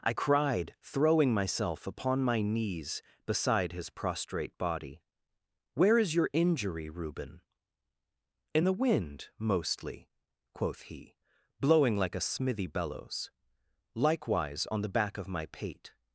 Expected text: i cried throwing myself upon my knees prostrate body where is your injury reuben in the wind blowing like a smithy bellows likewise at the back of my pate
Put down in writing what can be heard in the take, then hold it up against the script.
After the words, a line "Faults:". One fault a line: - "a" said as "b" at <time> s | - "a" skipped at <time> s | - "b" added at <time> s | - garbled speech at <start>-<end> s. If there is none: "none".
i cried throwing myself upon my knees beside his prostrate body where is your injury reuben in the wind mostly quoth he blowing like a smithy bellows likewise on the back of my pate
Faults:
- "beside his" added at 3.3 s
- "mostly quoth he" added at 9.4 s
- "at" said as "on" at 14.7 s